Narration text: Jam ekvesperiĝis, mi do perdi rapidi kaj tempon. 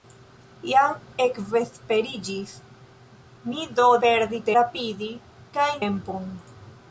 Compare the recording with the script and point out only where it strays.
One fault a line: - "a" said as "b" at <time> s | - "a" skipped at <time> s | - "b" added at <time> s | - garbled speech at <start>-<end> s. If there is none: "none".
none